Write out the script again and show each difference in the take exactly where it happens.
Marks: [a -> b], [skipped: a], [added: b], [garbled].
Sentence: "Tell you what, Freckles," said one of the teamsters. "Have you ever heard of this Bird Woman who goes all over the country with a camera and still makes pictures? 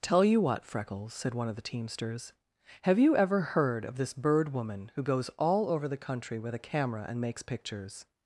"Tell you what, Freckles," said one of the teamsters. "Have you ever heard of this Bird Woman who goes all over the country with a camera and [skipped: still] makes pictures?